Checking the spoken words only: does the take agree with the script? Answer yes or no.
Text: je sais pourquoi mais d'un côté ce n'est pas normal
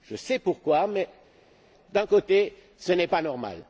yes